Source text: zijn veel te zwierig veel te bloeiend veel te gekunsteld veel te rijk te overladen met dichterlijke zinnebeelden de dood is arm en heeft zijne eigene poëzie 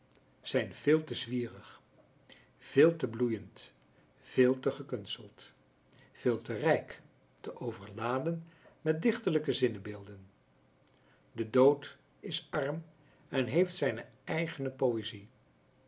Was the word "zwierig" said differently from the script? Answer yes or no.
no